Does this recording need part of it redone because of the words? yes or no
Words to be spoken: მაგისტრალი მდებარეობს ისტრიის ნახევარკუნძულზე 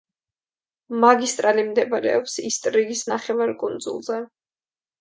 no